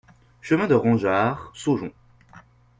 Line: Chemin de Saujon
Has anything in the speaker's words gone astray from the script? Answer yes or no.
yes